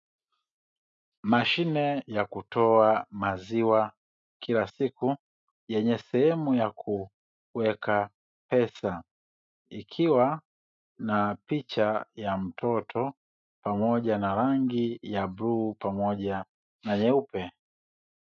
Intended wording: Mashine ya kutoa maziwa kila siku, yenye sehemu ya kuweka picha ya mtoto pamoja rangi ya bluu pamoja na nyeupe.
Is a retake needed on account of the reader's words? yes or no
yes